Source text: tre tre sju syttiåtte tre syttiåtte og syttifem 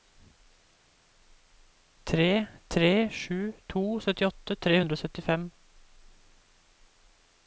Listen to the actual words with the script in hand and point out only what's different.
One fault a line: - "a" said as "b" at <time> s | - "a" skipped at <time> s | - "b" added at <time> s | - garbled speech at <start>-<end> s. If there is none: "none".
- "to" added at 3.7 s
- "syttiåtte" said as "hundre" at 4.8 s